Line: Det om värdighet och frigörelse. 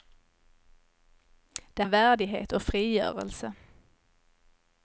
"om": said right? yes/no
yes